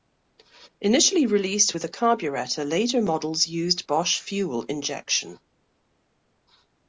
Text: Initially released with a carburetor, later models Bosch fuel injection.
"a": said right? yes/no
yes